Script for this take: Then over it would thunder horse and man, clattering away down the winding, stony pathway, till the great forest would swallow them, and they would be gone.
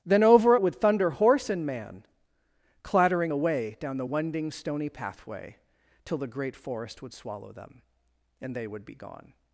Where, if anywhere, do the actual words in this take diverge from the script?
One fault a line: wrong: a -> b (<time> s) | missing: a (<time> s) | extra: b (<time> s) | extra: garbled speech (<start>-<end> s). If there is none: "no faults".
no faults